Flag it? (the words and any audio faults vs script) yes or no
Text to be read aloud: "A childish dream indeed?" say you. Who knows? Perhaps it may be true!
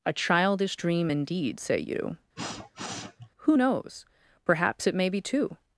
yes